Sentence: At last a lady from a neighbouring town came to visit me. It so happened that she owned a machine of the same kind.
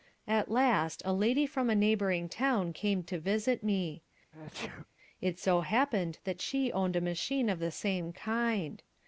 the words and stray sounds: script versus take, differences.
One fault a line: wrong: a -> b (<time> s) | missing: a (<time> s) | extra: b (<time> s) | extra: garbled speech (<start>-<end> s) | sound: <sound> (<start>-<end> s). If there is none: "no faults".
sound: sneeze (4.3-4.9 s)